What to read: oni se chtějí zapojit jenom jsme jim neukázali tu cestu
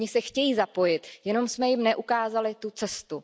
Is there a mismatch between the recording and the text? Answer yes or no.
no